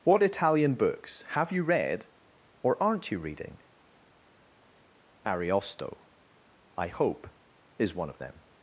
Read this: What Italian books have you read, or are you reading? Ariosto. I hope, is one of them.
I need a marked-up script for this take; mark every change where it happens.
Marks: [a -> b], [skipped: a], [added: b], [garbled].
What Italian books have you read, or [are -> aren't] you reading? Ariosto. I hope, is one of them.